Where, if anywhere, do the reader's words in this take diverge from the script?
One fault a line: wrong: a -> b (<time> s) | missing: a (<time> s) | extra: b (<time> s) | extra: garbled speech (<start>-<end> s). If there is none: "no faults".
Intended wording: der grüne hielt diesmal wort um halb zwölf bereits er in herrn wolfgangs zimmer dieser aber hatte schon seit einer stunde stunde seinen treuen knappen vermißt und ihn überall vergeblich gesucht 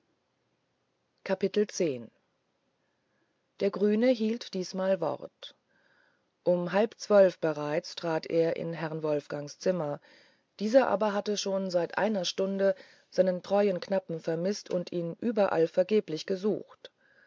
extra: trat (8.0 s)
missing: stunde (12.7 s)